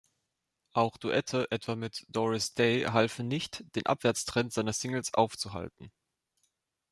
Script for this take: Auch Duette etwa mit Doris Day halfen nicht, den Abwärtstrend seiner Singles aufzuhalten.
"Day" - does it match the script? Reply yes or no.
yes